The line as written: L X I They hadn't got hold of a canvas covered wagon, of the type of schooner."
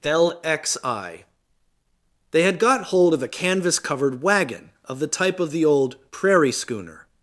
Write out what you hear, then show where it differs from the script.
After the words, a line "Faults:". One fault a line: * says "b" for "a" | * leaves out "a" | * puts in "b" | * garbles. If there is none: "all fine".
L X I They had got hold of a canvas covered wagon, of the type of the old "prairie schooner."
Faults:
* says "had" for "hadn't"
* puts in "the old prairie"